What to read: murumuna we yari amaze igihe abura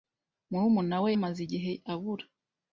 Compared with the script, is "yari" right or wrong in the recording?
wrong